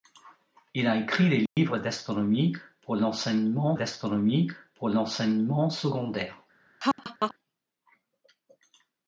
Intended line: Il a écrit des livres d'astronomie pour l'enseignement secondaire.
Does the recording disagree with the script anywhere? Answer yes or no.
yes